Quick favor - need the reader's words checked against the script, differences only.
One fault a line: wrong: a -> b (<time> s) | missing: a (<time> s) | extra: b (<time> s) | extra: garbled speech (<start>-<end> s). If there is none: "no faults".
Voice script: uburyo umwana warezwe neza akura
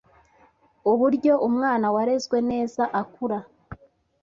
no faults